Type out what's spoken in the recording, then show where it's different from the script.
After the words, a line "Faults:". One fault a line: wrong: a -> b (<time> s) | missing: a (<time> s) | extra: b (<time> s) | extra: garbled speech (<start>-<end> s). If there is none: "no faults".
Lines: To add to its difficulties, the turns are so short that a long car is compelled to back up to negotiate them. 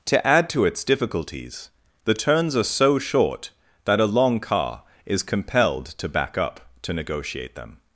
To add to its difficulties, the turns are so short that a long car is compelled to back up to negotiate them.
Faults:
no faults